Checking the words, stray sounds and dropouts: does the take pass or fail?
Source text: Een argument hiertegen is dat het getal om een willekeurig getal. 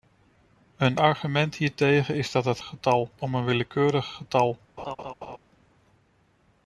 fail